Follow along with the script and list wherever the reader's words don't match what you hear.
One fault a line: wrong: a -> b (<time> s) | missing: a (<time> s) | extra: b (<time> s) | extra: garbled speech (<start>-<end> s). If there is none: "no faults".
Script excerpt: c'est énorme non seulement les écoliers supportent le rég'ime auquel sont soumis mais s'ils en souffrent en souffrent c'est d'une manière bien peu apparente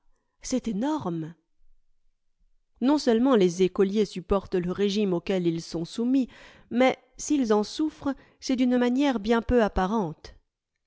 extra: ils (5.5 s)
missing: en souffrent (8.2 s)